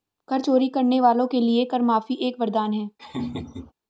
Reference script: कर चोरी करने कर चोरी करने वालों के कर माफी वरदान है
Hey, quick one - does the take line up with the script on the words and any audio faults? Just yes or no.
no